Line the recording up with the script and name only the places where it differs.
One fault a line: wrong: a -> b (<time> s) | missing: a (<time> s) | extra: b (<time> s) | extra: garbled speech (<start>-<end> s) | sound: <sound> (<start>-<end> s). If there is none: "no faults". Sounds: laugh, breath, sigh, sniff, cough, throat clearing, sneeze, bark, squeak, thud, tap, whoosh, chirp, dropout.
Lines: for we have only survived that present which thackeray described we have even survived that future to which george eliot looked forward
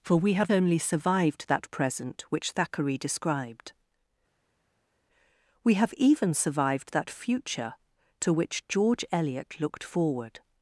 no faults